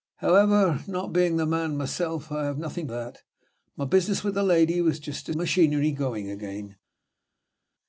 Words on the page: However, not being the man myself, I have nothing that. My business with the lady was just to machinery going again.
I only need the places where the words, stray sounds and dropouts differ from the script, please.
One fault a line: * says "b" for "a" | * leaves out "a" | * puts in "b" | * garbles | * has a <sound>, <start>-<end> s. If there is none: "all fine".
all fine